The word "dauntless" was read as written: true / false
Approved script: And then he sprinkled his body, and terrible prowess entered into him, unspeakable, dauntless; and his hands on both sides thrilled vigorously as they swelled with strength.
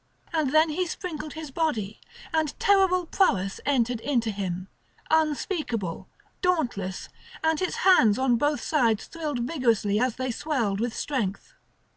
true